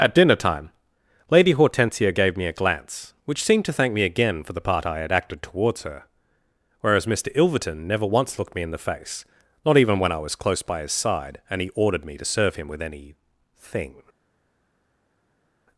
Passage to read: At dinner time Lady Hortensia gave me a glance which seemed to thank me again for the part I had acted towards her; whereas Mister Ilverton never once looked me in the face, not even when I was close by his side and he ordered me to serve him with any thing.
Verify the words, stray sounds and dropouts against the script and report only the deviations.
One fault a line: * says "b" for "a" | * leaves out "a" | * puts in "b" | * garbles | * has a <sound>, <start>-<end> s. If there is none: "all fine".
all fine